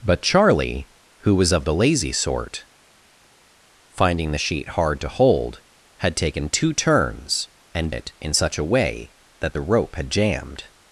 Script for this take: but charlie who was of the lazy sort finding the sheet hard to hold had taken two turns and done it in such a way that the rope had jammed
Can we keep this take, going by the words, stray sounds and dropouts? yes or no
no